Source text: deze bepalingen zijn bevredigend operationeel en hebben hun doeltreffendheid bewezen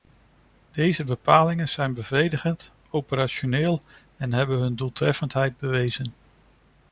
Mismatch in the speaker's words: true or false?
false